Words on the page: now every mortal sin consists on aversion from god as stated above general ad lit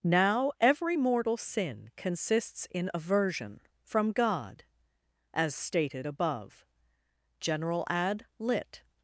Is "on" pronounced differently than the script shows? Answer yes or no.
yes